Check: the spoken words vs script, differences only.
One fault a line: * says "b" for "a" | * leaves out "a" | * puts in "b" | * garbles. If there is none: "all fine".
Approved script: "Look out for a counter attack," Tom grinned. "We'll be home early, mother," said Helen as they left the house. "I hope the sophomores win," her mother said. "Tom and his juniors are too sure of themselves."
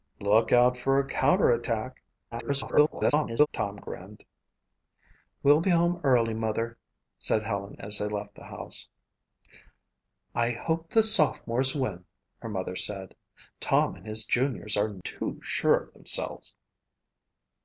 * garbles